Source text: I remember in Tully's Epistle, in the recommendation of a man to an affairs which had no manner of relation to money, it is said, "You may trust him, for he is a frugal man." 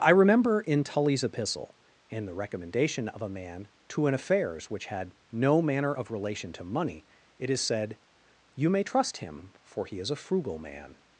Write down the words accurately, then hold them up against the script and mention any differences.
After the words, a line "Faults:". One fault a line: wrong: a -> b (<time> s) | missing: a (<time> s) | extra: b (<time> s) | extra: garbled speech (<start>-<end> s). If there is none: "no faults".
I remember in Tully's Epistle, in the recommendation of a man to an affairs which had no manner of relation to money, it is said, "You may trust him, for he is a frugal man."
Faults:
no faults